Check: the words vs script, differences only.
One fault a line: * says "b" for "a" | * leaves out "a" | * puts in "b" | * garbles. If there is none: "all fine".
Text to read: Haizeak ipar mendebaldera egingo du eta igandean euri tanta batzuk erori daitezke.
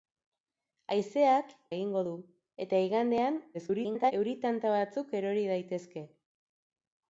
* leaves out "ipar mendebaldera"
* garbles